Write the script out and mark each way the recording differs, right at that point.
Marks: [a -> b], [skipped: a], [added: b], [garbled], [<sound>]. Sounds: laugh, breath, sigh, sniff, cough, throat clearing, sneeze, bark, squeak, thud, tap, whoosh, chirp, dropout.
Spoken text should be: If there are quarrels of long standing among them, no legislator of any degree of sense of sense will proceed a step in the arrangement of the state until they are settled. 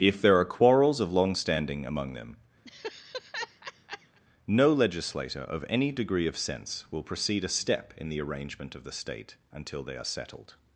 If there are quarrels of long standing among them, [laugh] no legislator of any degree of sense [skipped: of sense] will proceed a step in the arrangement of the state until they are settled.